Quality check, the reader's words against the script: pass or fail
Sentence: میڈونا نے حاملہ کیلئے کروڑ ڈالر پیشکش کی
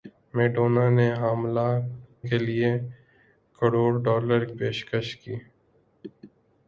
pass